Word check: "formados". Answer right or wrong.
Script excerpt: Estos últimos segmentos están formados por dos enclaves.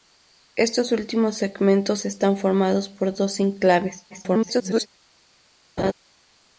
right